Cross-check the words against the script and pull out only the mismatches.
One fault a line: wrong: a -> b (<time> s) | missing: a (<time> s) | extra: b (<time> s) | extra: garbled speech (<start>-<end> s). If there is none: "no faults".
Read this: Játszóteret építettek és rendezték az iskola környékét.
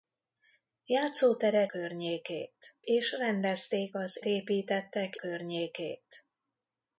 wrong: építettek -> környékét (1.6 s)
wrong: iskola -> építettek (4.2 s)